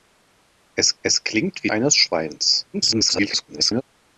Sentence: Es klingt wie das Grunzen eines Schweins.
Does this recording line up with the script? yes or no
no